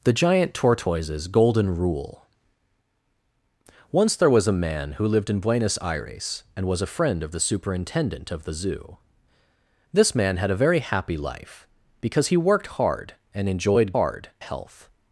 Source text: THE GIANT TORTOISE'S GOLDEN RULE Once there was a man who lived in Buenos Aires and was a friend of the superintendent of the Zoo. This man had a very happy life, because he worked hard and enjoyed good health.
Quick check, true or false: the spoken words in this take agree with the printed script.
false